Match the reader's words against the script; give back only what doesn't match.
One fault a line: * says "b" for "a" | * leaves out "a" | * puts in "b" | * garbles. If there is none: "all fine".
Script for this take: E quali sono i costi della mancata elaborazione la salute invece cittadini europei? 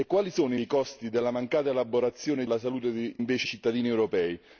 all fine